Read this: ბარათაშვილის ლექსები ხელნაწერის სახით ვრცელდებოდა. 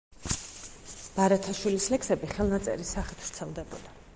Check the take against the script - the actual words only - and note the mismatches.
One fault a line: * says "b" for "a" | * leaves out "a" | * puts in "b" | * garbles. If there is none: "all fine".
all fine